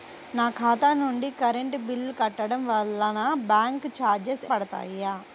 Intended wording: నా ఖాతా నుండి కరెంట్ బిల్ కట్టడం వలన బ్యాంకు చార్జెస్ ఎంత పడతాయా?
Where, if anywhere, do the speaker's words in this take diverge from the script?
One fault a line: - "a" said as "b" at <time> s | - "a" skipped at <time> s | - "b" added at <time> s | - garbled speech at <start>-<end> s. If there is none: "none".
- "ఎంత" skipped at 4.5 s